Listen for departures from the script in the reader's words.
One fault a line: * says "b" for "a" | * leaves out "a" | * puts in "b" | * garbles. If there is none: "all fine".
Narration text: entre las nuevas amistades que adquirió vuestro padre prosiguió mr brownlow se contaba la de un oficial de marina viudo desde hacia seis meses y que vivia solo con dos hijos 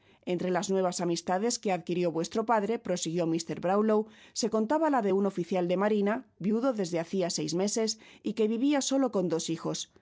all fine